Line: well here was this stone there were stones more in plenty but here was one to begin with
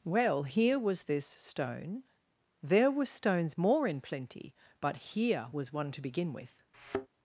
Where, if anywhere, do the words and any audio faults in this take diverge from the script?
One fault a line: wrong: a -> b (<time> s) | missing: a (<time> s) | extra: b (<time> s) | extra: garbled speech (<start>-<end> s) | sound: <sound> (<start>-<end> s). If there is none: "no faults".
sound: thud (6.7-7.1 s)